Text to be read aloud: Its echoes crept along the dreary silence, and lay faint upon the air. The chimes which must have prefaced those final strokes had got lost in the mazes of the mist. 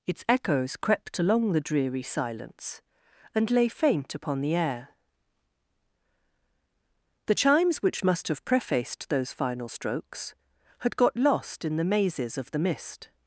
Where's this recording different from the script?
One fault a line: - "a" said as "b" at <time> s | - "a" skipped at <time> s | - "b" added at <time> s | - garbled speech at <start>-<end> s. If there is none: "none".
none